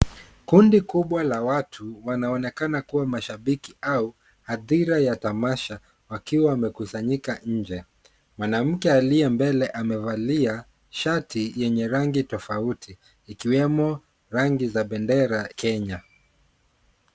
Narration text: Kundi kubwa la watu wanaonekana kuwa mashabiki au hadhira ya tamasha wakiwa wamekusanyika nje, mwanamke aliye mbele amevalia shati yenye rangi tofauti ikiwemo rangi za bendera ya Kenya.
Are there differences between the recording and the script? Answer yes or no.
yes